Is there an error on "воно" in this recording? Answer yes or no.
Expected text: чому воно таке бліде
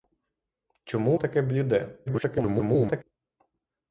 yes